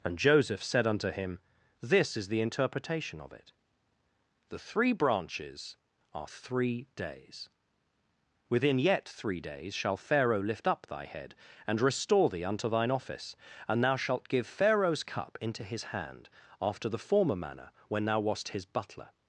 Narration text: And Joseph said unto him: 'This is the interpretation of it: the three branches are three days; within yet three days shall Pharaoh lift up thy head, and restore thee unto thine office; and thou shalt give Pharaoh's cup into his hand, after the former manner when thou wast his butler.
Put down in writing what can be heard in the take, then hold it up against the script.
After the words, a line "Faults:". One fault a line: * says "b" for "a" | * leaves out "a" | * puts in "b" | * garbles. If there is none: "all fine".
And Joseph said unto him: 'This is the interpretation of it: the three branches are three days; within yet three days shall Pharaoh lift up thy head, and restore thee unto thine office; and thou shalt give Pharaoh's cup into his hand, after the former manner when thou wast his butler.
Faults:
all fine